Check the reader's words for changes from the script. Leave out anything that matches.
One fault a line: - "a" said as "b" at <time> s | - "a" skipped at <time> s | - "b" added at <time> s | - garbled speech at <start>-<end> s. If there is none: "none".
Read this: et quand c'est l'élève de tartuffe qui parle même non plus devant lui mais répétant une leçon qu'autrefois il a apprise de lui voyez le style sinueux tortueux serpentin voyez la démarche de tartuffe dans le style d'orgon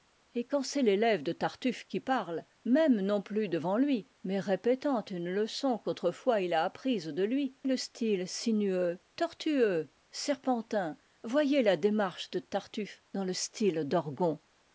- "voyez" skipped at 7.5 s